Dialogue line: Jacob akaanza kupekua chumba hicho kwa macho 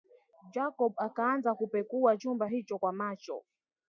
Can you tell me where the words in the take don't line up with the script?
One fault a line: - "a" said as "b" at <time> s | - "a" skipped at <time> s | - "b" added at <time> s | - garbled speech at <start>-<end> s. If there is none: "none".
none